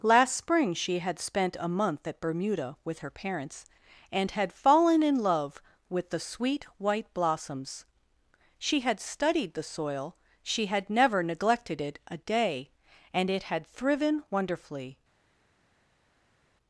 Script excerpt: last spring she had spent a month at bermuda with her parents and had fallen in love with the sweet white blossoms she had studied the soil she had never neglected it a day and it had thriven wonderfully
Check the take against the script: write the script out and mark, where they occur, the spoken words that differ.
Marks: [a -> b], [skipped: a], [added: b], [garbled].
last spring she had spent a month at bermuda with her parents and had fallen in love with the sweet white blossoms she had studied the soil she had never neglected it a day and it had thriven wonderfully